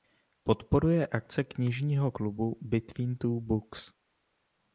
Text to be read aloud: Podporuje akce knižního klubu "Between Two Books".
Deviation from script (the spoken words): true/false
false